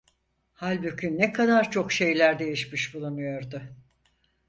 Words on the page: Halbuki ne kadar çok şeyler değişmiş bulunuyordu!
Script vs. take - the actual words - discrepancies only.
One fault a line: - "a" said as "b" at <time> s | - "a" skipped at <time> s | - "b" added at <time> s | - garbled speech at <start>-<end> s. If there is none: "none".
none